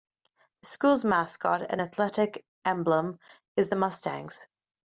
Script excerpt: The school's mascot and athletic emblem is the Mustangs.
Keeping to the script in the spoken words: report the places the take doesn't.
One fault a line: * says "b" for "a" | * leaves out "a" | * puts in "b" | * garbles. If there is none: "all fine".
all fine